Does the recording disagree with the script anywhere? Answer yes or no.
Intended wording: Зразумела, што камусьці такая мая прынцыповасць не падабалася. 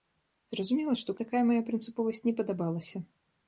yes